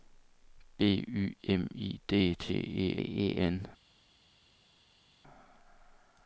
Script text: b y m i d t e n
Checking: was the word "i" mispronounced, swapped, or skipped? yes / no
no